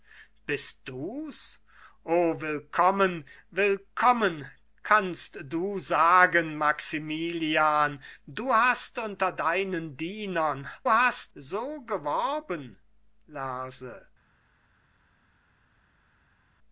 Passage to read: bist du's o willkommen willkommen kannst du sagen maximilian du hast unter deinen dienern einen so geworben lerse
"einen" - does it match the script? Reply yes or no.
no